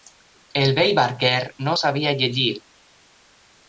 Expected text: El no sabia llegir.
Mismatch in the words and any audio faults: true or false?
true